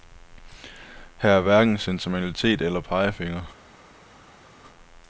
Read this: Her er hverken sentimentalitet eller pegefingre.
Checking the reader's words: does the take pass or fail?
pass